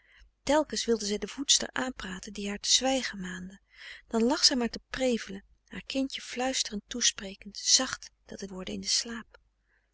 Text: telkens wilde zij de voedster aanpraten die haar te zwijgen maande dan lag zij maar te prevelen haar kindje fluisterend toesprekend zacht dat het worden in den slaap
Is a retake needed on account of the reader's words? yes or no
no